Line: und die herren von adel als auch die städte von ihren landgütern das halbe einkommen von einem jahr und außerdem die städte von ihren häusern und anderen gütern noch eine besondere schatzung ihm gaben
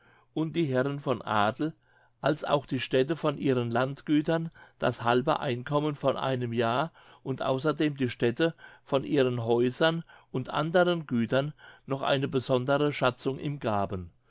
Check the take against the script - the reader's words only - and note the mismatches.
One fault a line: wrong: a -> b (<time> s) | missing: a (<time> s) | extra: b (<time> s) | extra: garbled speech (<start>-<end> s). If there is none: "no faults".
no faults